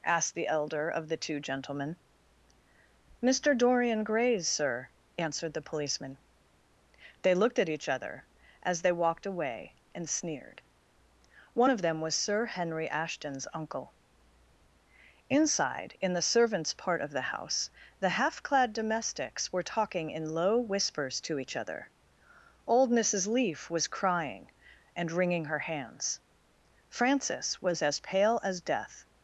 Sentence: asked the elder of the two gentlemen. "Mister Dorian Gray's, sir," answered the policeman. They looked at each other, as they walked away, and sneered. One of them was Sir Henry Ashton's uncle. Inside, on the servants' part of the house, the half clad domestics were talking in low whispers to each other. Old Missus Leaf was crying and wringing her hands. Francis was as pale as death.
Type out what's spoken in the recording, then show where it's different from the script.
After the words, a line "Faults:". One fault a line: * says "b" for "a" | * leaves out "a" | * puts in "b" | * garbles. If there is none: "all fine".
asked the elder of the two gentlemen. "Mister Dorian Gray's, sir," answered the policeman. They looked at each other, as they walked away, and sneered. One of them was Sir Henry Ashton's uncle. Inside, in the servants' part of the house, the half clad domestics were talking in low whispers to each other. Old Missus Leaf was crying and wringing her hands. Francis was as pale as death.
Faults:
* says "in" for "on"